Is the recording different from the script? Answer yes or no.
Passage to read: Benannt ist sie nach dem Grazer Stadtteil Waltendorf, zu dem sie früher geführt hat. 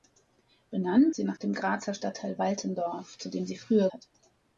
yes